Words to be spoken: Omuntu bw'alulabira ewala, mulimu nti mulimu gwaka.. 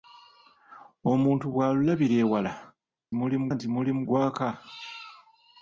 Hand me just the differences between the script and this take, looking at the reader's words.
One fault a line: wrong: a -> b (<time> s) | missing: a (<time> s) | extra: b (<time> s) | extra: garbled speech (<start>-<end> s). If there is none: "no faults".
no faults